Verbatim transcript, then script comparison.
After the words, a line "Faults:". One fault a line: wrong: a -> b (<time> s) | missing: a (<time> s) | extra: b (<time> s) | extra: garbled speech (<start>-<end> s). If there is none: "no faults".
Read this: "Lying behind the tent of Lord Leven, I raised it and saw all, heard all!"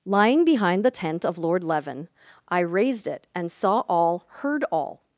"Lying behind the tent of Lord Leven, I raised it and saw all, heard all!"
Faults:
no faults